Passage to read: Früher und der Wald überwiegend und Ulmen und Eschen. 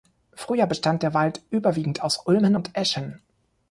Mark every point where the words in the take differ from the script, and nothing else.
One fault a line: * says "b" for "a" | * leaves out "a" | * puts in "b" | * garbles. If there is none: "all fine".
* says "bestand" for "und"
* says "aus" for "und"